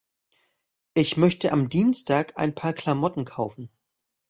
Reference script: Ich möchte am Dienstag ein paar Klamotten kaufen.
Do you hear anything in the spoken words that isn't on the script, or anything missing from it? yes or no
no